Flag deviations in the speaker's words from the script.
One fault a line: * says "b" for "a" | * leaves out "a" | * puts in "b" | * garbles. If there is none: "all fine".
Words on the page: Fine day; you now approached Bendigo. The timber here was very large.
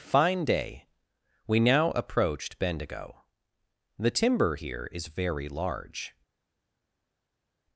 * says "we" for "you"
* says "is" for "was"